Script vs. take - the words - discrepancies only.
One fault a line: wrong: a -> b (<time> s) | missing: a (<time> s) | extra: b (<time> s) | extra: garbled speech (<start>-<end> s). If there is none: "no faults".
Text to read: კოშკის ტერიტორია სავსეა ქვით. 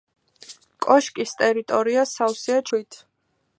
no faults